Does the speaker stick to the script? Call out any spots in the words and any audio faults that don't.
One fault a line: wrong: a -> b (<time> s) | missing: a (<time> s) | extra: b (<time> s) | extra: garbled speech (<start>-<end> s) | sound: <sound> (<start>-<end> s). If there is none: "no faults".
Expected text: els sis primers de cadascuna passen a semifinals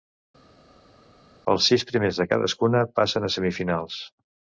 no faults